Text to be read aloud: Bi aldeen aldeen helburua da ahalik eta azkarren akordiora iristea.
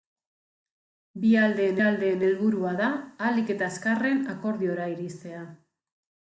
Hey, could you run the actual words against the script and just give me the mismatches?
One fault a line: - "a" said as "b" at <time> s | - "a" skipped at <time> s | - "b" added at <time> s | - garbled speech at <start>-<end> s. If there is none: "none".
none